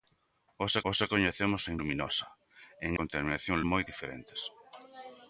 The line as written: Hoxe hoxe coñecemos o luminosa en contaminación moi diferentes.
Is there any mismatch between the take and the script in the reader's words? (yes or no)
no